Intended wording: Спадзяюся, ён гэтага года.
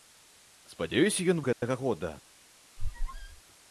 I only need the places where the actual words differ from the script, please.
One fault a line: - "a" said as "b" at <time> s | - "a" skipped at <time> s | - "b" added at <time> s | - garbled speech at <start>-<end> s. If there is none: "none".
none